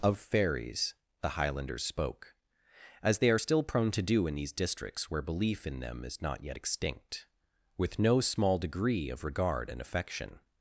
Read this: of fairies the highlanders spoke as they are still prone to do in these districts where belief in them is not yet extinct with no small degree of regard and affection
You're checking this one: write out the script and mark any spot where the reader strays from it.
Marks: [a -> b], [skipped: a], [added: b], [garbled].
of fairies the highlanders spoke as they are still prone to do in these districts where belief in them is not yet extinct with no small degree of regard and affection